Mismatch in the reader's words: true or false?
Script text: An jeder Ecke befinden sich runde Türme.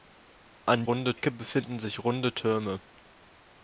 true